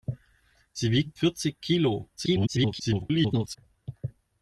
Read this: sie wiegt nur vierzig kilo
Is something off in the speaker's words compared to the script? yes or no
yes